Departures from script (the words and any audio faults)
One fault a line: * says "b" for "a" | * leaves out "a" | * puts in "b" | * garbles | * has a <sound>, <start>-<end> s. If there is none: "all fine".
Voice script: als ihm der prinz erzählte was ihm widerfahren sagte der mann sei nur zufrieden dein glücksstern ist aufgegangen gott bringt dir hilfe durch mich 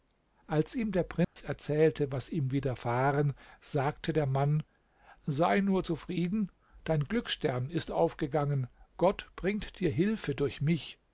* has a dropout, 1.2-1.4 s